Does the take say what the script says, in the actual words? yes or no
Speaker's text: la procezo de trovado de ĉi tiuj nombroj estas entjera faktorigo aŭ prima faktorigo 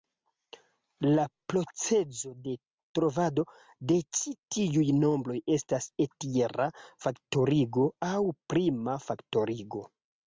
yes